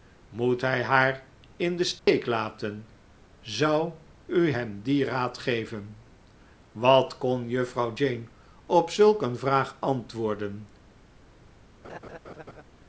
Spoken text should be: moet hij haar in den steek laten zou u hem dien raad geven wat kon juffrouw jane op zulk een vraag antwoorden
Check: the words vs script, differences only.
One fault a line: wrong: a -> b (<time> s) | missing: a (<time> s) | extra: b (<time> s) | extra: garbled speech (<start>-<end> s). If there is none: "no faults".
no faults